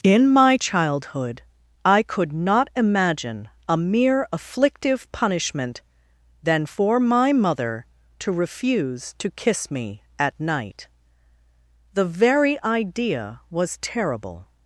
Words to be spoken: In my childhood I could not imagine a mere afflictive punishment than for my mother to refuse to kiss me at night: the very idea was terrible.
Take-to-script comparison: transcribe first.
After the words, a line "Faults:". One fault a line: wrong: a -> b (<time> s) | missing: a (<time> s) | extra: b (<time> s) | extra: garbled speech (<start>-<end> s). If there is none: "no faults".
In my childhood I could not imagine a mere afflictive punishment than for my mother to refuse to kiss me at night: the very idea was terrible.
Faults:
no faults